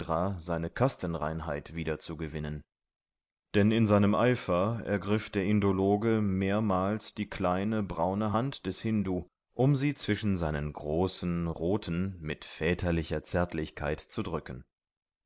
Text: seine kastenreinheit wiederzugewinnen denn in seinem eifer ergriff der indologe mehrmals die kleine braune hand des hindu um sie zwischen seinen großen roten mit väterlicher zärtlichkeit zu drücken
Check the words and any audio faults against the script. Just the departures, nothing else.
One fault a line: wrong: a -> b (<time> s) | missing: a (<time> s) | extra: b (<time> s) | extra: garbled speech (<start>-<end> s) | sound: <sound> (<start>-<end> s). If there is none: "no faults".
no faults